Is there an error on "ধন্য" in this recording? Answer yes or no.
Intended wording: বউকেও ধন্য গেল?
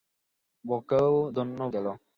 no